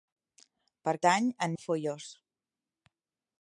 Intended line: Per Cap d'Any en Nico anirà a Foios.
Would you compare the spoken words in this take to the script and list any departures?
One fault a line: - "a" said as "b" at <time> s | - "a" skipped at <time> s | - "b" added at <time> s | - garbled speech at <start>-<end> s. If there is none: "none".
- "Cap" skipped at 0.9 s
- "Nico anirà" skipped at 1.5 s